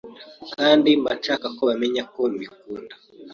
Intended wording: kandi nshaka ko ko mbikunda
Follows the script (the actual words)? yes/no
no